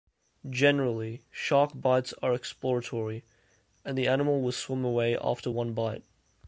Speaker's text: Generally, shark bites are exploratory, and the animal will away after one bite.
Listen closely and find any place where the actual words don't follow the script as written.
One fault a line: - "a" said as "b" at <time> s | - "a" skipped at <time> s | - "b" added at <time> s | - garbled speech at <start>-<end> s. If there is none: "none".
- "swim" added at 4.5 s